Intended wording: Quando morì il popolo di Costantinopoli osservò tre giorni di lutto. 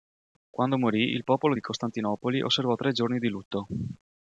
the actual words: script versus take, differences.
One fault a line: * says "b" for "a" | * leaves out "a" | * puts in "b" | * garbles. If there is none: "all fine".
all fine